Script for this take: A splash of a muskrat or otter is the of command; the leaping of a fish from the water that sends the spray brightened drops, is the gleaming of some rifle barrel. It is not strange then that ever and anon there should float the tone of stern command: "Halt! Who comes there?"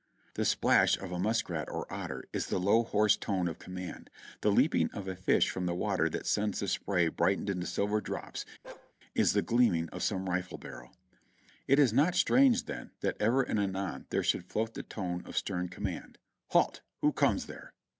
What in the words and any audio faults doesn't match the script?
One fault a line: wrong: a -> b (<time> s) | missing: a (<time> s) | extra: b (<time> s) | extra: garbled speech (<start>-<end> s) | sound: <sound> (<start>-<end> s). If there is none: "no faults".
wrong: A -> The (0.3 s)
extra: low hoarse tone (2.6 s)
extra: into silver (7.5 s)
sound: bark (8.6-8.9 s)